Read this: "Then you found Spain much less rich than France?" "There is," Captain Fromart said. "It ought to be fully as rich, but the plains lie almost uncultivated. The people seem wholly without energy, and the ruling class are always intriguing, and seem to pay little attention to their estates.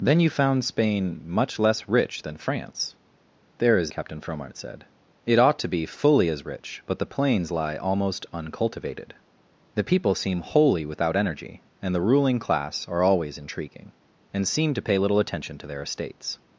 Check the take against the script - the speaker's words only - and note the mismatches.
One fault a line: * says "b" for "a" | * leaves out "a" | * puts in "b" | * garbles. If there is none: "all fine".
all fine